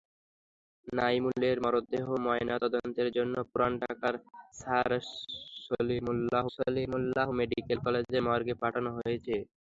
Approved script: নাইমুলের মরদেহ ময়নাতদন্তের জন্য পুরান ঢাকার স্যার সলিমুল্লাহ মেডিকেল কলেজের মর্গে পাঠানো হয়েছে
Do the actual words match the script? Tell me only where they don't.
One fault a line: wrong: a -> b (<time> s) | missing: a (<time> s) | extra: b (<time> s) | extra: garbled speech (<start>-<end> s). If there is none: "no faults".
extra: সলিমুল্লাহ (6.5 s)